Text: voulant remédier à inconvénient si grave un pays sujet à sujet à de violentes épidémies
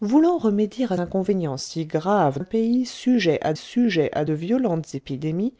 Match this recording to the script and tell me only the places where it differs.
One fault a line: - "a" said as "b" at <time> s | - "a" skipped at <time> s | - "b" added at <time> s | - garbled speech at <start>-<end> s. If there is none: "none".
none